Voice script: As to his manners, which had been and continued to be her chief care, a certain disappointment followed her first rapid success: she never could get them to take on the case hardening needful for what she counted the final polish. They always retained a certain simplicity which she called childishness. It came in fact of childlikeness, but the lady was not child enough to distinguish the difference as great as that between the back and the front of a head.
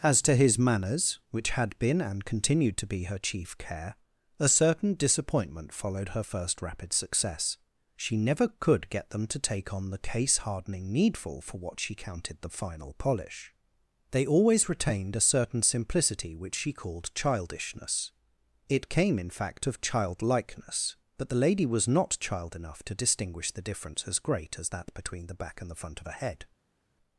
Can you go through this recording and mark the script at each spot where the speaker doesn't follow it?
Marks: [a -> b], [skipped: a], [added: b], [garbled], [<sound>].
As to his manners, which had been and continued to be her chief care, a certain disappointment followed her first rapid success: she never could get them to take on the case hardening needful for what she counted the final polish. They always retained a certain simplicity which she called childishness. It came in fact of childlikeness, but the lady was not child enough to distinguish the difference as great as that between the back and the front of a head.